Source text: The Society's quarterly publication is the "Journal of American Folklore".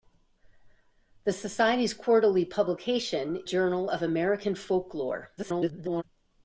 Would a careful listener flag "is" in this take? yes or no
yes